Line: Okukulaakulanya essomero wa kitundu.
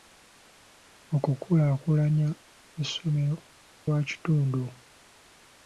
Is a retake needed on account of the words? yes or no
no